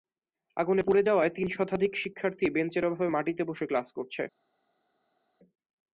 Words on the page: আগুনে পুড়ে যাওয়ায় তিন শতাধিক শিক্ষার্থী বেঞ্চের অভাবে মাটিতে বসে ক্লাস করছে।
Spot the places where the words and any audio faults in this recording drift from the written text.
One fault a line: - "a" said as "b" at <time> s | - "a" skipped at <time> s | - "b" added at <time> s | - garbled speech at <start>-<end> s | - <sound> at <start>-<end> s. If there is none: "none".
none